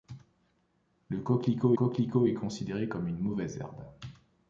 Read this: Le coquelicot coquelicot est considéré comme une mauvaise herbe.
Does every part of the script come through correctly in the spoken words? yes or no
yes